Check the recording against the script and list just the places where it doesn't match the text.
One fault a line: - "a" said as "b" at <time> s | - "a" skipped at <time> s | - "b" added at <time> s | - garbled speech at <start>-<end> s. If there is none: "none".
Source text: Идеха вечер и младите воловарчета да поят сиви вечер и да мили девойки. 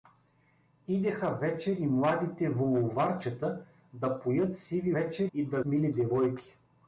none